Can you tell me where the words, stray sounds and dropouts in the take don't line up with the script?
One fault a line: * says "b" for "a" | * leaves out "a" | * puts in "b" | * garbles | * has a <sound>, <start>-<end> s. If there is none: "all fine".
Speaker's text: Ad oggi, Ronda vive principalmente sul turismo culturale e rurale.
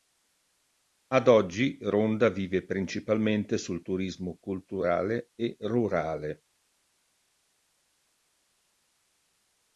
all fine